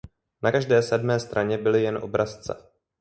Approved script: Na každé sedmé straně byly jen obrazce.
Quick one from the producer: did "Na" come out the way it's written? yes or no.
yes